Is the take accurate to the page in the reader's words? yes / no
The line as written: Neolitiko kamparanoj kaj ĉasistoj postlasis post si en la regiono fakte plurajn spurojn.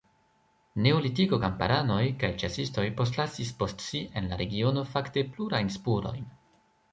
yes